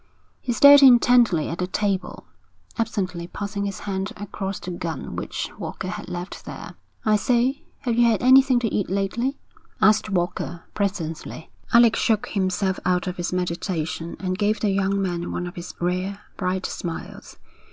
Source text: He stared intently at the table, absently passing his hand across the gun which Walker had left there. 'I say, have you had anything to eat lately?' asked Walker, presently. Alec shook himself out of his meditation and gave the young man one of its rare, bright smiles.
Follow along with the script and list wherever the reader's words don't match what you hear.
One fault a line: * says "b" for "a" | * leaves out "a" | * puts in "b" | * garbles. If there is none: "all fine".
* says "his" for "its"